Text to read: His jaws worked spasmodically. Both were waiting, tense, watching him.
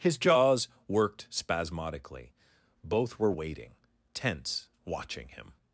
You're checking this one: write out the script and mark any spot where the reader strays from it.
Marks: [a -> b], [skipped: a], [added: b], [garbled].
His jaws worked spasmodically. Both were waiting, tense, watching him.